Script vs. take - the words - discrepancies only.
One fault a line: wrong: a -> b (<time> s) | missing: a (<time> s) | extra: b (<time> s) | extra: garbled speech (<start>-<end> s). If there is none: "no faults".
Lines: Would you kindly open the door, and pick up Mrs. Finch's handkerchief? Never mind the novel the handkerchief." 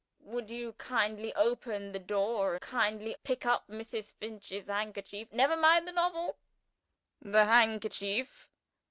wrong: and -> kindly (2.6 s)